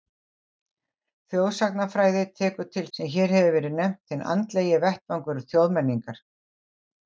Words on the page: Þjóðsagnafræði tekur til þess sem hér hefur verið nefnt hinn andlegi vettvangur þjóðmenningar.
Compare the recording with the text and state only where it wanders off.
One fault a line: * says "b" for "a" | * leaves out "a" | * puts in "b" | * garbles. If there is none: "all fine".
* leaves out "þess"